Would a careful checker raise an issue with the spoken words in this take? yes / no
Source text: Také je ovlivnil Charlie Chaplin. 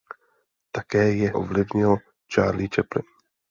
no